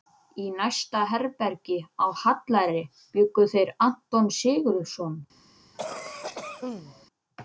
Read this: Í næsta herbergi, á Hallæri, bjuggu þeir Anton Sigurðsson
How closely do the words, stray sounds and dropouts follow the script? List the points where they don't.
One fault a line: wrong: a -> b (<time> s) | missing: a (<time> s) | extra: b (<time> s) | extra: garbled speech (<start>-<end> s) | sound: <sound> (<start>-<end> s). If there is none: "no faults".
sound: cough (5.7-7.1 s)